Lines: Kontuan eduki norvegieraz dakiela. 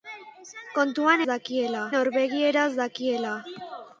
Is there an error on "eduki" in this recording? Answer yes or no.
yes